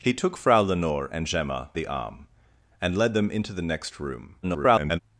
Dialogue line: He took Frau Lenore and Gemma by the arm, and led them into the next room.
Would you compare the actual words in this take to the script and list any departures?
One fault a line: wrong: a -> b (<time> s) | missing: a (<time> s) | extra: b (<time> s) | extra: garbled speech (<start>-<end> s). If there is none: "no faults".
missing: by (1.7 s)
extra: garbled speech (4.4-5.0 s)